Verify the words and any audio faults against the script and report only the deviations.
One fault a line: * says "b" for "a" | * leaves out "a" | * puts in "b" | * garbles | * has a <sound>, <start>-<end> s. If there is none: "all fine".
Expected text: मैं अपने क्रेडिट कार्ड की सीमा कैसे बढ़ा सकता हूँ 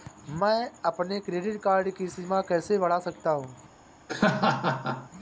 * has a laugh, 4.1-5.1 s